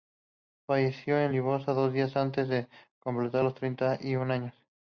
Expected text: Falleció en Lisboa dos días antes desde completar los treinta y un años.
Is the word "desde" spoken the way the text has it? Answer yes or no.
no